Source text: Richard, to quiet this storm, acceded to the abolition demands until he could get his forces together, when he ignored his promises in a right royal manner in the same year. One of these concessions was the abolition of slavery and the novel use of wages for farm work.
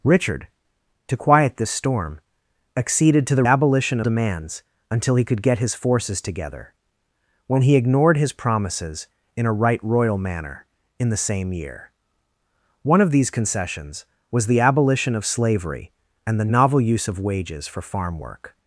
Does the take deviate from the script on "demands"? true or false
false